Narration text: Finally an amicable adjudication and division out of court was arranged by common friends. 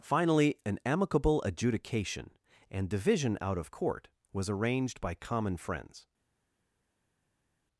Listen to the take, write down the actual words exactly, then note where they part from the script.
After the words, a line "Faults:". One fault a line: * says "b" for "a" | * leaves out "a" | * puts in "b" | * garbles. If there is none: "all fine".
Finally an amicable adjudication and division out of court was arranged by common friends.
Faults:
all fine